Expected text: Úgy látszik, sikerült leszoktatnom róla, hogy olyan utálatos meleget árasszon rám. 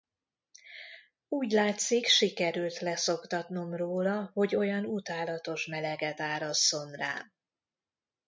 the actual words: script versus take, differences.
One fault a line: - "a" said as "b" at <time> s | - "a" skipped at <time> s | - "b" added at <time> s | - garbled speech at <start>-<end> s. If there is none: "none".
none